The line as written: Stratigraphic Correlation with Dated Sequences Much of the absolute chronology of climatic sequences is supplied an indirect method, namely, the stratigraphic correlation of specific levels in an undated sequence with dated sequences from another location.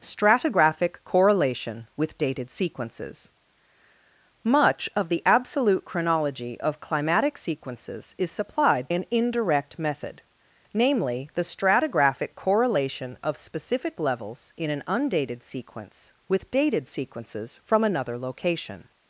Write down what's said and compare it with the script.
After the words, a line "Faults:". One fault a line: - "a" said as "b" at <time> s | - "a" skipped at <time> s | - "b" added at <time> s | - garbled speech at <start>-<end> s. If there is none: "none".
Stratigraphic Correlation with Dated Sequences Much of the absolute chronology of climatic sequences is supplied an indirect method, namely, the stratigraphic correlation of specific levels in an undated sequence with dated sequences from another location.
Faults:
none